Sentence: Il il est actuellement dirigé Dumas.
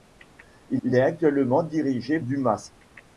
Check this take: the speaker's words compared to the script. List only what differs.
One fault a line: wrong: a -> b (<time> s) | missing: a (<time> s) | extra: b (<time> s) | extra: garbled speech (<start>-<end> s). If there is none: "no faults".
no faults